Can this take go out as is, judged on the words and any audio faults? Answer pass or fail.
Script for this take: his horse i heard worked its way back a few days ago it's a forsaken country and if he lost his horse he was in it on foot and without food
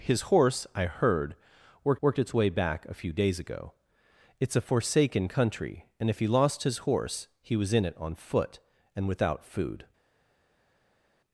fail